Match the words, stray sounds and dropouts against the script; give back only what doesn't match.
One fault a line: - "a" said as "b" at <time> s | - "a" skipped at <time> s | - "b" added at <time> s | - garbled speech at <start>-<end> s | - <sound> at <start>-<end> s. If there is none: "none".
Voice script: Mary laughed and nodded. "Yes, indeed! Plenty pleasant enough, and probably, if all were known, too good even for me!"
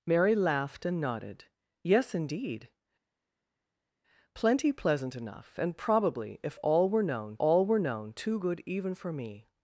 - "all were known" added at 7.4 s